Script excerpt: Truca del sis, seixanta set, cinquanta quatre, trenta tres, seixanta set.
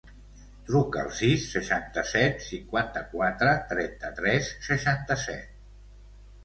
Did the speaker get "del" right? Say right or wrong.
wrong